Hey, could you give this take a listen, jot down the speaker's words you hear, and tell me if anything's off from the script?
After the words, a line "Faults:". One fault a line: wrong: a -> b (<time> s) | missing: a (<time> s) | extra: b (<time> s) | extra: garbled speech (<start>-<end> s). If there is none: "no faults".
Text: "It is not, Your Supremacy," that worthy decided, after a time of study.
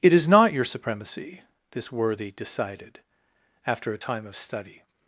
"It is not, Your Supremacy," this worthy decided, after a time of study.
Faults:
wrong: that -> this (1.7 s)